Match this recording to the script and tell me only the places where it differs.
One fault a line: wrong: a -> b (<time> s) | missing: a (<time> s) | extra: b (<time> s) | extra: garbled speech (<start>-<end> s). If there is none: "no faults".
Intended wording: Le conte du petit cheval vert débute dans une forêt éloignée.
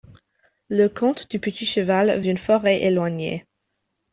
missing: vert débute dans (2.2 s)